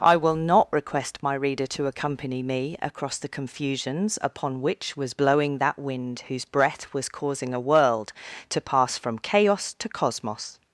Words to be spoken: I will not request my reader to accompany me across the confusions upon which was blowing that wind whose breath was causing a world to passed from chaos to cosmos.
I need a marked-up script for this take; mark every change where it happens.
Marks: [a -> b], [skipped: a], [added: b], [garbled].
I will not request my reader to accompany me across the confusions upon which was blowing that wind whose breath was causing a world to [passed -> pass] from chaos to cosmos.